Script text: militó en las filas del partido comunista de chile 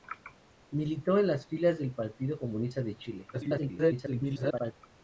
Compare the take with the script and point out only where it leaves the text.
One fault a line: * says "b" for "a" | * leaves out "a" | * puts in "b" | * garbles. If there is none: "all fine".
* garbles